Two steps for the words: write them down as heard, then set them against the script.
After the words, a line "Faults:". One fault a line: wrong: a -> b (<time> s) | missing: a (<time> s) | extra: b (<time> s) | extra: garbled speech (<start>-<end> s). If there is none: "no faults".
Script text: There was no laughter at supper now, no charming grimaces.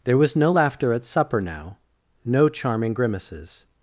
There was no laughter at supper now, no charming grimaces.
Faults:
no faults